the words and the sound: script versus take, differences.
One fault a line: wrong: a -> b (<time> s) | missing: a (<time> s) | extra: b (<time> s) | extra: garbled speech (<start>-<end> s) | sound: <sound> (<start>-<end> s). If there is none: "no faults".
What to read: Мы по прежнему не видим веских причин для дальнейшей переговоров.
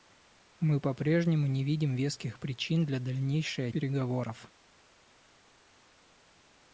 no faults